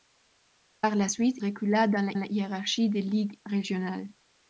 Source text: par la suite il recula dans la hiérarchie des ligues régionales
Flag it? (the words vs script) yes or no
yes